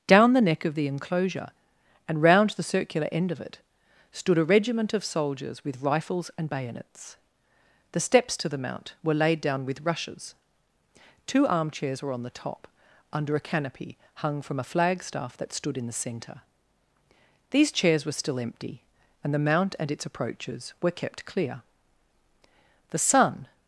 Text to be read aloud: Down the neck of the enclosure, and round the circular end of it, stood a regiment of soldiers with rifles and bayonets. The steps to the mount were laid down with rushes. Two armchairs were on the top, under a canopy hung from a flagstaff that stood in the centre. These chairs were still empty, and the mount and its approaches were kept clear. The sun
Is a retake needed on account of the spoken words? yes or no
no